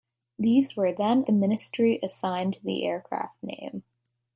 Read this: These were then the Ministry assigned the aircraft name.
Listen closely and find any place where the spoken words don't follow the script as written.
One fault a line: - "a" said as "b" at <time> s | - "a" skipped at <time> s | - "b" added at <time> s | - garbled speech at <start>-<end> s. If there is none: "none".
none